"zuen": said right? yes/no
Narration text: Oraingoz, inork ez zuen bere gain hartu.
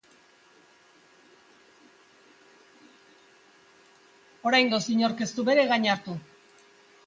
no